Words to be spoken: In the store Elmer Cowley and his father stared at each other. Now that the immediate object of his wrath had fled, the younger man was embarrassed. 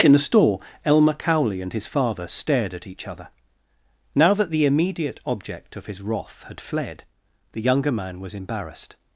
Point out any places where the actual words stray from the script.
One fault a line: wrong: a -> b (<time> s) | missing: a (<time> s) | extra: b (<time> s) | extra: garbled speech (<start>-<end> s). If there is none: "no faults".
no faults